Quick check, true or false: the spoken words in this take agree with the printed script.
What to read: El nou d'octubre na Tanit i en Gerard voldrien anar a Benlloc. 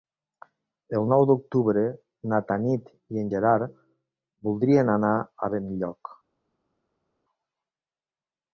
true